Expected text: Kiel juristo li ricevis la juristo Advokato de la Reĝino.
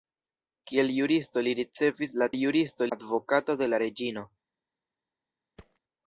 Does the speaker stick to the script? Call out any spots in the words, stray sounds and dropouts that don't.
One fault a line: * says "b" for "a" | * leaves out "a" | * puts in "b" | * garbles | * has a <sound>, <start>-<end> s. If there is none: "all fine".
* has a thud, 5.6-5.8 s